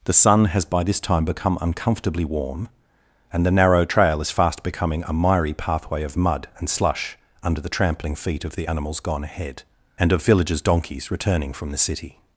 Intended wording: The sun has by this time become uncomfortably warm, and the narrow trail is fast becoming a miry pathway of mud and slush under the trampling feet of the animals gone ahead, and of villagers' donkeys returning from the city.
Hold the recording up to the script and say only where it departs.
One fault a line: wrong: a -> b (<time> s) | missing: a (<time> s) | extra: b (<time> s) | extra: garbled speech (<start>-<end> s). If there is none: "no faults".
no faults